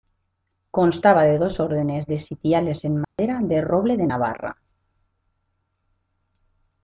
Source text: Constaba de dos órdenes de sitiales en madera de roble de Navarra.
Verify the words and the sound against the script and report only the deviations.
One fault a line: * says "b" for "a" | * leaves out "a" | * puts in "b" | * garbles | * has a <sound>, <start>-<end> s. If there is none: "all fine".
* has a dropout, 3.0-3.2 s